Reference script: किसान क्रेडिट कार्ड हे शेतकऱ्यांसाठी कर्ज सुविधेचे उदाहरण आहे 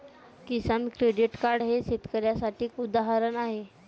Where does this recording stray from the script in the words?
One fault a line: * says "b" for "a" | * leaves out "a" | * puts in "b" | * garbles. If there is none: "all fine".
* leaves out "कर्ज सुविधेचे"